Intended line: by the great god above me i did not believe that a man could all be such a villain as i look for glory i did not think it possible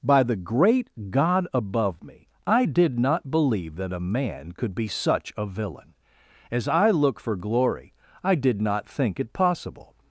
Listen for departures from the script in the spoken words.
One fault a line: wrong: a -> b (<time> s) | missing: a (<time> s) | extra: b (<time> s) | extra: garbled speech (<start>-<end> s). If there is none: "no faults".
missing: all (4.7 s)